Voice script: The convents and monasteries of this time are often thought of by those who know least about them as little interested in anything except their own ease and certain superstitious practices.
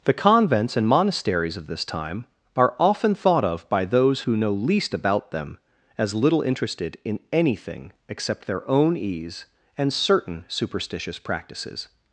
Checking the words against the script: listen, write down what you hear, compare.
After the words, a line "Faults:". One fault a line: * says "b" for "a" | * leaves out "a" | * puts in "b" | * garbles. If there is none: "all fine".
The convents and monasteries of this time are often thought of by those who know least about them as little interested in anything except their own ease and certain superstitious practices.
Faults:
all fine